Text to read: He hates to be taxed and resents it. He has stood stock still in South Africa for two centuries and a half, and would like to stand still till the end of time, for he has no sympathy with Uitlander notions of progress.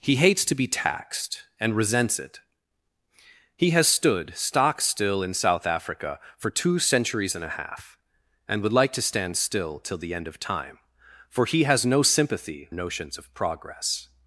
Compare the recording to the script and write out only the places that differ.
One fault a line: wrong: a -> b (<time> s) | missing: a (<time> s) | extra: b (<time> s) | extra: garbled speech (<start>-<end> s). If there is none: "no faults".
missing: with Uitlander (12.7 s)